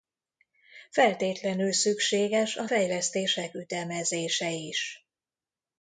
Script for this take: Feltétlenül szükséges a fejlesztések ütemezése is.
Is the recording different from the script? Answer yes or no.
no